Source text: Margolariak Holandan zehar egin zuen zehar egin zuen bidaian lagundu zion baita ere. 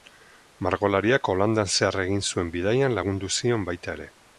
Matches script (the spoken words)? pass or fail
fail